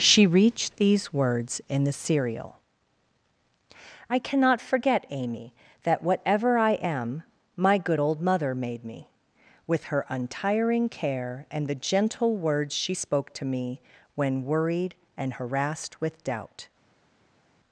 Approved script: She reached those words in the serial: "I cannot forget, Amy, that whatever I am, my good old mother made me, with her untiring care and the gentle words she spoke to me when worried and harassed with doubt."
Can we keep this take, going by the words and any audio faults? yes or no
no